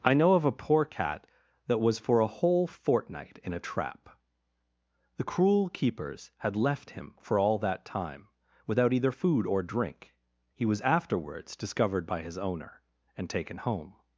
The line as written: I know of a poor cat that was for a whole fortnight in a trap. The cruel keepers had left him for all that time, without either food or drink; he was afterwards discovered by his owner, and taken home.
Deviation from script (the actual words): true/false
false